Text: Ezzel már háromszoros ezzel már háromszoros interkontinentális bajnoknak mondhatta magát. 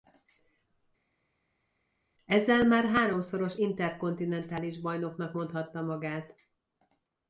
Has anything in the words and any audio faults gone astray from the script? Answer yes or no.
yes